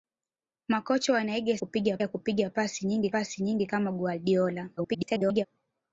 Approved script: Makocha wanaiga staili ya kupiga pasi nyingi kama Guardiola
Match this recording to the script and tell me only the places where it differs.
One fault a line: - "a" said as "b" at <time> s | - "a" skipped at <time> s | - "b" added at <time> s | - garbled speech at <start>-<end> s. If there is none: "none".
- "staili" said as "kupiga" at 1.6 s
- "pasi nyingi" added at 3.1 s
- garbled speech at 4.8-5.5 s